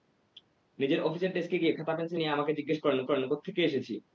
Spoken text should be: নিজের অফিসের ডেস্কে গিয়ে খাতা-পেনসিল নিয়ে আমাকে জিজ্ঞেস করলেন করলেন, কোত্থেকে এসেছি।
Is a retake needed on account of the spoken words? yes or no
no